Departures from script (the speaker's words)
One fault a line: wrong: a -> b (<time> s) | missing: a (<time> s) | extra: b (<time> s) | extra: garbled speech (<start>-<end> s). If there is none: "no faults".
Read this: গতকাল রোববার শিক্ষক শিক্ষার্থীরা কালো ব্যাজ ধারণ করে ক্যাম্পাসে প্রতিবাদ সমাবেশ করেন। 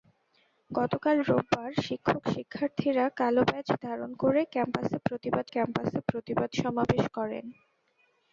extra: ক্যাম্পাসে প্রতিবাদ (5.5 s)